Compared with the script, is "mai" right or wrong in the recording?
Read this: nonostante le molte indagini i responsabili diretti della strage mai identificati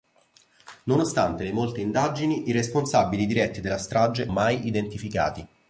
right